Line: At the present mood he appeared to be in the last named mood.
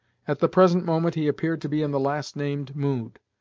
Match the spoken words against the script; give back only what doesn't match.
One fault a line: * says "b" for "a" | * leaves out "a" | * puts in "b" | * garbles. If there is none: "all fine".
* says "moment" for "mood"